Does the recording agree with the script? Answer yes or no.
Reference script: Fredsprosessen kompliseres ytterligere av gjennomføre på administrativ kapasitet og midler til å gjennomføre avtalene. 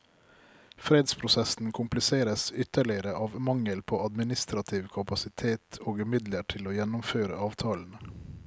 no